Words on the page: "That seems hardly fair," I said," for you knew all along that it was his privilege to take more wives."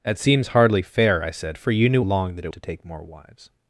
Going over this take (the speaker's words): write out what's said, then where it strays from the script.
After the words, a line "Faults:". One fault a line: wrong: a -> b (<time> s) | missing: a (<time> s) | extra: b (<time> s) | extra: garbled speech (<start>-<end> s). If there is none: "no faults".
"That seems hardly fair," I said," for you knew along that it to take more wives."
Faults:
missing: all (2.0 s)
missing: was his privilege (2.5 s)